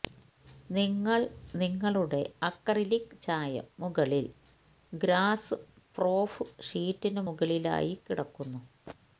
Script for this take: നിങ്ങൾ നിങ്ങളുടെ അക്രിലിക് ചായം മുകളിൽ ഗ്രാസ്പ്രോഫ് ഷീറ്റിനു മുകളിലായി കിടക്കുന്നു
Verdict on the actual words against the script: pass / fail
pass